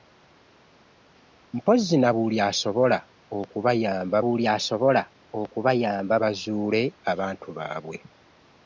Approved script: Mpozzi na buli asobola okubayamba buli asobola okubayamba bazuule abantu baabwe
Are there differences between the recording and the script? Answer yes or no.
no